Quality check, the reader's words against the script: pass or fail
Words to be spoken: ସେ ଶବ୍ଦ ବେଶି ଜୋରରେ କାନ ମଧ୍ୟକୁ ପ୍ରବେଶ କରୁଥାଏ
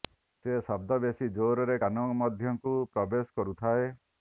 pass